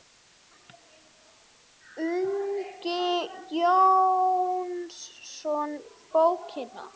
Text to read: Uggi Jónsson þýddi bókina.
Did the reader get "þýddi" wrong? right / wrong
wrong